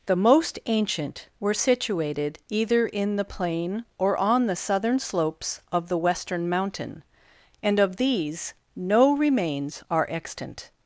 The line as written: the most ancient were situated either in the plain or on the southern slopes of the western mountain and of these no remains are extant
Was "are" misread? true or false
false